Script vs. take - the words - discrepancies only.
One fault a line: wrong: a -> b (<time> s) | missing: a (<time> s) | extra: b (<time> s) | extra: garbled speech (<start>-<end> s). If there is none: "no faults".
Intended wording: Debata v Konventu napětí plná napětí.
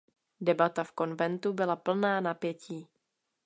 wrong: napětí -> byla (1.5 s)